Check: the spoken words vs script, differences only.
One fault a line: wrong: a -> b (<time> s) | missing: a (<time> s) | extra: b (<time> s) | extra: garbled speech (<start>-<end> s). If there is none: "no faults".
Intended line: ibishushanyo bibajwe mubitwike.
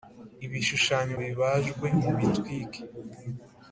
no faults